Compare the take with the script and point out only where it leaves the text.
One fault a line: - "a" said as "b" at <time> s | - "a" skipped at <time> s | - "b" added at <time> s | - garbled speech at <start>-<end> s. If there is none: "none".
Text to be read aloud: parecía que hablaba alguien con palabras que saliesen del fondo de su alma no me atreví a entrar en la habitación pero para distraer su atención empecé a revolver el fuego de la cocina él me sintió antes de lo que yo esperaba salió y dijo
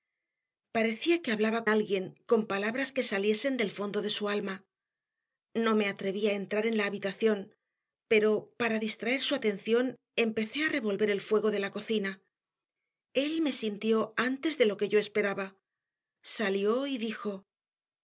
none